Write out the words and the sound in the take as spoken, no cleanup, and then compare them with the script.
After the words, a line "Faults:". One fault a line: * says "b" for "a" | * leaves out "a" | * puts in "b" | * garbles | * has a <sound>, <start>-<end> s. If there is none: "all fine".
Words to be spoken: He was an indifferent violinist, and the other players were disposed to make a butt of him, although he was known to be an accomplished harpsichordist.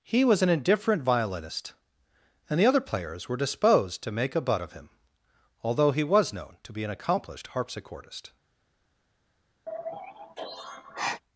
He was an indifferent violinist, and the other players were disposed to make a butt of him, although he was known to be an accomplished harpsichordist.
Faults:
* has a sigh, 9.7-11.2 s